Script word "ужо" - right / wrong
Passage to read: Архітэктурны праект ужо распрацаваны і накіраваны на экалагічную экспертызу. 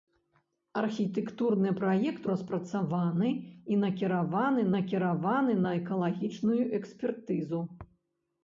wrong